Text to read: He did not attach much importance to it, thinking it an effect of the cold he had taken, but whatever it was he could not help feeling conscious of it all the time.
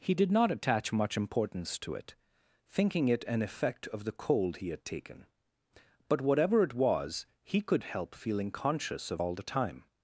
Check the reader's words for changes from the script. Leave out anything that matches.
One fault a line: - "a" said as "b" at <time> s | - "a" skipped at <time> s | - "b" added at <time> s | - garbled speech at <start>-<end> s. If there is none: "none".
- "not" skipped at 7.8 s
- "it" skipped at 9.2 s